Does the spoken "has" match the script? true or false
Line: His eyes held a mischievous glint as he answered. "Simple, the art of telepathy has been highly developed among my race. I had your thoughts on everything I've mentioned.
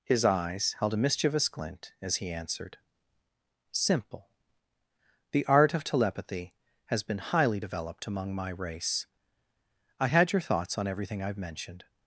true